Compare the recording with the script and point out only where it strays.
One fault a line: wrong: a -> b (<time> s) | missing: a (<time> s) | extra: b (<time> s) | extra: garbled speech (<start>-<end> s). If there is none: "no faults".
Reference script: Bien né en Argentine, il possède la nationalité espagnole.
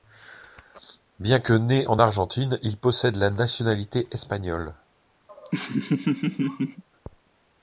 extra: que (1.4 s)